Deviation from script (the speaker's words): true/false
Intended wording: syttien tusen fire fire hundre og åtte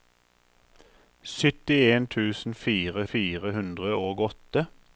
false